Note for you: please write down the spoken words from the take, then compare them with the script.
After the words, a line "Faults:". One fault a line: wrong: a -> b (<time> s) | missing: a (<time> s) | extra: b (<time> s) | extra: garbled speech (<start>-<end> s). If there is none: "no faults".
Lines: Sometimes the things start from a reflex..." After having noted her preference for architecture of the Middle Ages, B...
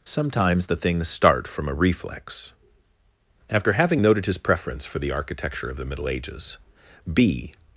Sometimes the things start from a reflex..." After having noted his preference for the architecture of the Middle Ages, B...
Faults:
wrong: her -> his (4.3 s)
extra: the (5.0 s)